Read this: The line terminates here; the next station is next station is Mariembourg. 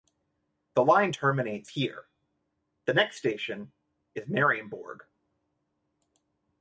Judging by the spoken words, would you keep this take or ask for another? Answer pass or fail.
fail